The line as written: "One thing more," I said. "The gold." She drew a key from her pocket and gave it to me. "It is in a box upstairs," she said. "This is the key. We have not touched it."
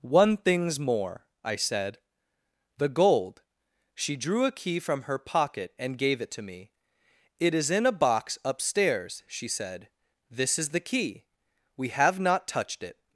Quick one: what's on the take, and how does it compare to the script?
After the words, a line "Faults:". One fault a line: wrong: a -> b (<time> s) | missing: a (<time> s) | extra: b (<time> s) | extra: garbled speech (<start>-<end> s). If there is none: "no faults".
"One things more," I said. "The gold." She drew a key from her pocket and gave it to me. "It is in a box upstairs," she said. "This is the key. We have not touched it."
Faults:
wrong: thing -> things (0.4 s)